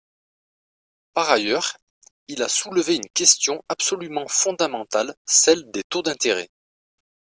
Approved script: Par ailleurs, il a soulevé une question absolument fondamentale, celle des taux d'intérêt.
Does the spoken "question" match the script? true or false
true